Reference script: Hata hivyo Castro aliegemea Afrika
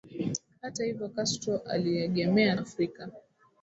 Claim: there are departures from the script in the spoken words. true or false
false